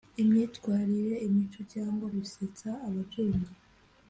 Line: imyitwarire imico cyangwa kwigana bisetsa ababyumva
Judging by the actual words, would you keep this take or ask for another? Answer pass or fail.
fail